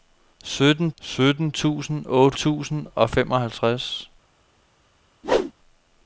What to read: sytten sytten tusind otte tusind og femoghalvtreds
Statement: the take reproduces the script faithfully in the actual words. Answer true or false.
true